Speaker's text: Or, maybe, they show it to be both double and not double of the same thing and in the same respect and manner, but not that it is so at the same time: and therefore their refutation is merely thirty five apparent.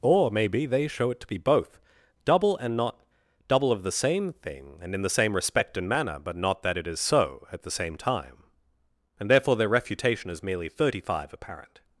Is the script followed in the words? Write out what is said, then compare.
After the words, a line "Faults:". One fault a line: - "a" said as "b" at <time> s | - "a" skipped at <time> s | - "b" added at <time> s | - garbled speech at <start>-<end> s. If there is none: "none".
Or, maybe, they show it to be both double and not double of the same thing and in the same respect and manner, but not that it is so at the same time: and therefore their refutation is merely thirty five apparent.
Faults:
none